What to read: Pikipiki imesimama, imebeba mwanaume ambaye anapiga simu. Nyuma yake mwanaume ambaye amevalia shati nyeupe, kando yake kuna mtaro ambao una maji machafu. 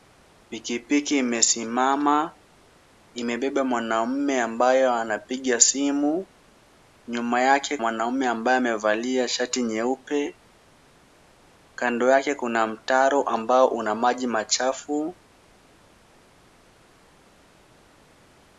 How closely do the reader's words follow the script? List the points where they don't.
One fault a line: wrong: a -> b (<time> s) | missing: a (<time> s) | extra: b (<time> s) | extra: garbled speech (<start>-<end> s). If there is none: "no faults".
no faults